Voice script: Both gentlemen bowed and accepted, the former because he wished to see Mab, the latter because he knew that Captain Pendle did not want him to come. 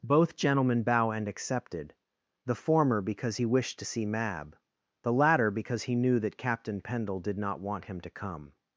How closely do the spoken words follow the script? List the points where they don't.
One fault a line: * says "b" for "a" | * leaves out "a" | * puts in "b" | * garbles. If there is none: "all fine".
* says "bow" for "bowed"